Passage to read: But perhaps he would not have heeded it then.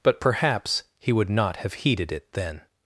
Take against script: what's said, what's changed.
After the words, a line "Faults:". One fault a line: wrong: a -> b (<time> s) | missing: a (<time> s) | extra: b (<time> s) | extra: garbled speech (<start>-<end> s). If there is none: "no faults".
But perhaps he would not have heeded it then.
Faults:
no faults